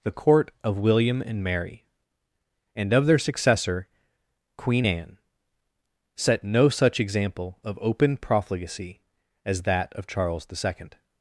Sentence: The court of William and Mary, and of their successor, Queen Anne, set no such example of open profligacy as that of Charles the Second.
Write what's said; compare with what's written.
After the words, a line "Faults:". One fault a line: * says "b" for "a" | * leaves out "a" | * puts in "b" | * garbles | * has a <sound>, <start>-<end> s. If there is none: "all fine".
The court of William and Mary, and of their successor, Queen Anne, set no such example of open profligacy as that of Charles the Second.
Faults:
all fine